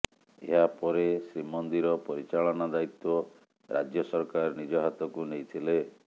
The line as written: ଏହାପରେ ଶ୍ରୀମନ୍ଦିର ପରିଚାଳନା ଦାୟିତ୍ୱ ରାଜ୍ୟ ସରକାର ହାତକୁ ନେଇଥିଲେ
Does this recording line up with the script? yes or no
no